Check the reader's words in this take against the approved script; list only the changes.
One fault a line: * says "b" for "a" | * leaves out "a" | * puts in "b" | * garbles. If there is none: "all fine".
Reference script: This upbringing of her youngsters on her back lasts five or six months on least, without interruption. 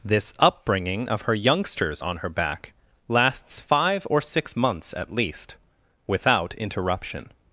* says "at" for "on"